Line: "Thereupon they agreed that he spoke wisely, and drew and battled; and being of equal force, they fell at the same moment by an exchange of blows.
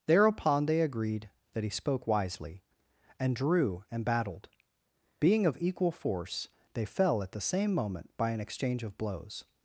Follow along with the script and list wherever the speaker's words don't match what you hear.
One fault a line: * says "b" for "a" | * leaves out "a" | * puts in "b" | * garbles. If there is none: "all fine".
* leaves out "and"